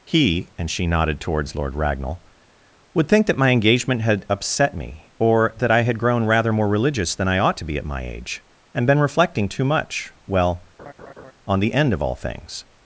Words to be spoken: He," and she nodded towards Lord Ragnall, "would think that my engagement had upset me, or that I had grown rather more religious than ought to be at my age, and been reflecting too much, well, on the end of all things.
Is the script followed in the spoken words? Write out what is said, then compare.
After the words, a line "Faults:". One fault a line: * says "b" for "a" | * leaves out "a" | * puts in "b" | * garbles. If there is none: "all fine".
He," and she nodded towards Lord Ragnall, "would think that my engagement had upset me, or that I had grown rather more religious than I ought to be at my age, and been reflecting too much, well, on the end of all things.
Faults:
* puts in "I"